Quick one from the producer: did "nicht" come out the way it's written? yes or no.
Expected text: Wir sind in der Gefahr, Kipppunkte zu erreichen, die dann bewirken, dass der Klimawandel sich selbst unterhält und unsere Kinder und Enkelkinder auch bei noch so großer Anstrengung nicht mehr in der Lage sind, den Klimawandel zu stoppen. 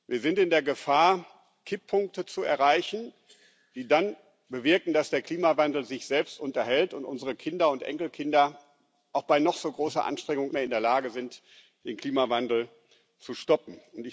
no